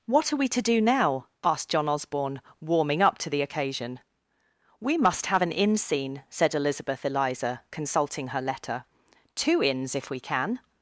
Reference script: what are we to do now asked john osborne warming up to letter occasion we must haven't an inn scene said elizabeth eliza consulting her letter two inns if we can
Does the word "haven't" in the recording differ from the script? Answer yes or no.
yes